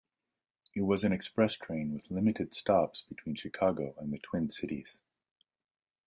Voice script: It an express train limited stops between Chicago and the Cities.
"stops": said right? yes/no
yes